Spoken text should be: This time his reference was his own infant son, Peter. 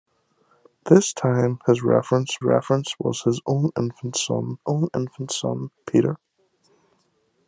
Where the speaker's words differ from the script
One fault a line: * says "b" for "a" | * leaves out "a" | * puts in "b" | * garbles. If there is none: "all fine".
* puts in "reference"
* puts in "own infant son"